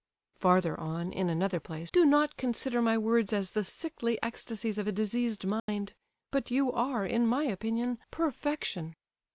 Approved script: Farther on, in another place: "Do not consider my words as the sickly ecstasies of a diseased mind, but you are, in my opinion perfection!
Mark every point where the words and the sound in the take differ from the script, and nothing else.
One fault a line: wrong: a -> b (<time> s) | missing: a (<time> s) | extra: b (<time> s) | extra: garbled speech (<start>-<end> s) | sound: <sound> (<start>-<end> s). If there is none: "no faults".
sound: dropout (5.6-5.7 s)